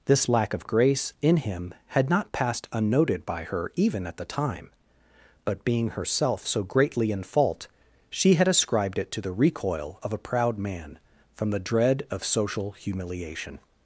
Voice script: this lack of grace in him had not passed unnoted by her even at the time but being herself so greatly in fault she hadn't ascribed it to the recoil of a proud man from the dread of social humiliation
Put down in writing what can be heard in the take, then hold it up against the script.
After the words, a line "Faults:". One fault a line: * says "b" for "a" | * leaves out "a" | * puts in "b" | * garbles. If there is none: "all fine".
this lack of grace in him had not passed unnoted by her even at the time but being herself so greatly in fault she had ascribed it to the recoil of a proud man from the dread of social humiliation
Faults:
* says "had" for "hadn't"